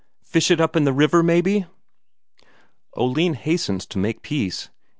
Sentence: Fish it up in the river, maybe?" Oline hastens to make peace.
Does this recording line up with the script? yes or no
yes